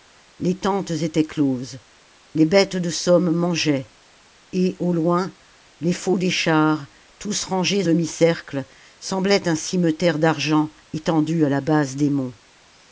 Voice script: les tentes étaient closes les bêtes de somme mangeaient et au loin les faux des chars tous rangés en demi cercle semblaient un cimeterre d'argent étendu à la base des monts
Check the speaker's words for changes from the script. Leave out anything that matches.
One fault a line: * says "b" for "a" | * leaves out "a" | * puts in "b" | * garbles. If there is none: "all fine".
* leaves out "en"